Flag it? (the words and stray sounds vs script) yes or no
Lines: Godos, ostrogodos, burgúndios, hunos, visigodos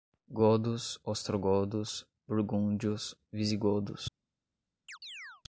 yes